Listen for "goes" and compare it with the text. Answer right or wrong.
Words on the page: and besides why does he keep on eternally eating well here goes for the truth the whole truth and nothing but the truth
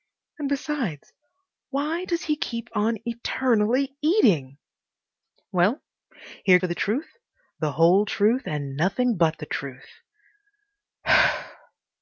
wrong